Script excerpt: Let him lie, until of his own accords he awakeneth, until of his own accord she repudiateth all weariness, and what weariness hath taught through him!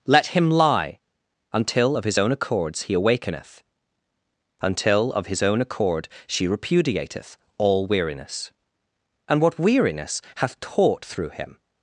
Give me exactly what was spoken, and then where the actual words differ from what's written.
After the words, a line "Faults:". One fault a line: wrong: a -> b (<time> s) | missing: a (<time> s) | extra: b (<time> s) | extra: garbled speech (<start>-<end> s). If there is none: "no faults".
Let him lie, until of his own accords he awakeneth, until of his own accord she repudiateth all weariness, and what weariness hath taught through him!
Faults:
no faults